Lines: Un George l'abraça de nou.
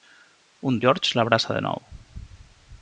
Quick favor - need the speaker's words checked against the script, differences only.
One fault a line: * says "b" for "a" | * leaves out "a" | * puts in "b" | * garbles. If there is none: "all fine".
all fine